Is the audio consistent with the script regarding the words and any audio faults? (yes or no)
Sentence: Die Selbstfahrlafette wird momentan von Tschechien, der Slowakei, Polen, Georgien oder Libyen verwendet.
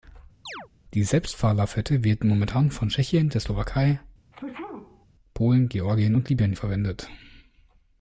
no